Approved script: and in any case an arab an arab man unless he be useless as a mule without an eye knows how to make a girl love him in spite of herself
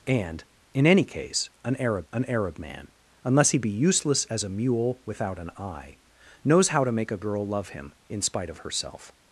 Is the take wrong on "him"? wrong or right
right